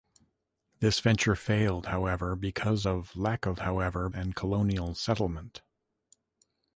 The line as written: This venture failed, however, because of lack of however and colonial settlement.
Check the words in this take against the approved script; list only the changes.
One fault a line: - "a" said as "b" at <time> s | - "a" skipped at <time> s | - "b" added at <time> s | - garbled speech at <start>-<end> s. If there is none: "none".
none